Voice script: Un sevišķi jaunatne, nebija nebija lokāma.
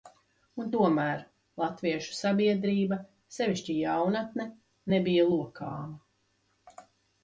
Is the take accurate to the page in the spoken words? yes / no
no